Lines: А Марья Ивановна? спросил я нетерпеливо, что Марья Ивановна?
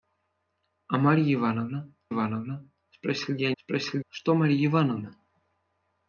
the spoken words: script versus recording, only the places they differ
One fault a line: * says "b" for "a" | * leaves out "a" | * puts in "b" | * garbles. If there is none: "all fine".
* puts in "Ивановна"
* says "спросил" for "нетерпеливо"